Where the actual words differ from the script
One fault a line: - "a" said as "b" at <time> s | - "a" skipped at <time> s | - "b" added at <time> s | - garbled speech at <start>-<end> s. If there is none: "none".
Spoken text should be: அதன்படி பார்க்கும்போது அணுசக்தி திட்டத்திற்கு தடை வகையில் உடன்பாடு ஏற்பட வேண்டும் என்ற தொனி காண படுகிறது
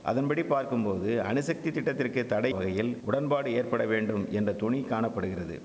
none